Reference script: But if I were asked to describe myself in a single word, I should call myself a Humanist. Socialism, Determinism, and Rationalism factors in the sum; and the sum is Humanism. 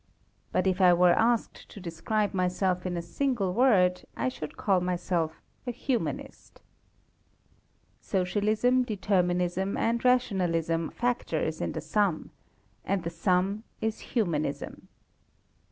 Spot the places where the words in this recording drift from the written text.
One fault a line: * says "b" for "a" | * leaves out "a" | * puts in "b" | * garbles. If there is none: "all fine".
all fine